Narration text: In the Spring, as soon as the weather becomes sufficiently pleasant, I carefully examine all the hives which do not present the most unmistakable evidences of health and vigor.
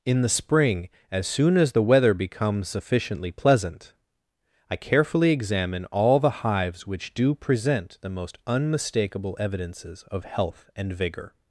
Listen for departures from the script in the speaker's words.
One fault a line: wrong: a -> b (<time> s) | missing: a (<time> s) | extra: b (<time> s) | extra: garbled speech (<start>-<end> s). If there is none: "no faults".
missing: not (7.3 s)